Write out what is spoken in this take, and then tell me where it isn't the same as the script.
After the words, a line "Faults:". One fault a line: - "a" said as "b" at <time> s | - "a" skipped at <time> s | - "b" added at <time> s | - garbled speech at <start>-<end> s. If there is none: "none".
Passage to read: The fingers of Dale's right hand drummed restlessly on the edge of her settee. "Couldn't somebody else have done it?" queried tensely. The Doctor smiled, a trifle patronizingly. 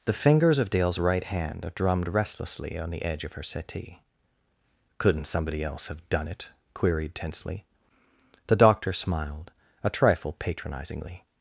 The fingers of Dale's right hand drummed restlessly on the edge of her settee. "Couldn't somebody else have done it?" queried tensely. The Doctor smiled, a trifle patronizingly.
Faults:
none